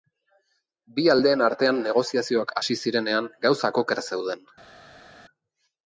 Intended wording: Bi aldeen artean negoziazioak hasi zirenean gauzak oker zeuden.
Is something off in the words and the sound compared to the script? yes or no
no